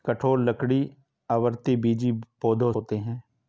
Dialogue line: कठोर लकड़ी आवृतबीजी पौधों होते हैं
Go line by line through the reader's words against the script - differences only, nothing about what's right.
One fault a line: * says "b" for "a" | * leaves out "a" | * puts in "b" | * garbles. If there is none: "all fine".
all fine